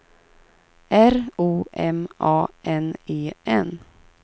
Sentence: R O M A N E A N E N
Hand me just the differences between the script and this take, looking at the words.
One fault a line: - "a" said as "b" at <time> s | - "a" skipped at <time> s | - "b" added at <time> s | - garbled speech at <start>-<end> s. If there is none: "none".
- "A N E" skipped at 3.3 s